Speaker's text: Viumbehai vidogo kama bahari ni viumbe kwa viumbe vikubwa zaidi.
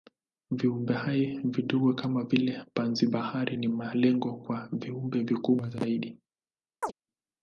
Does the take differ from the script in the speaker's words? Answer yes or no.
yes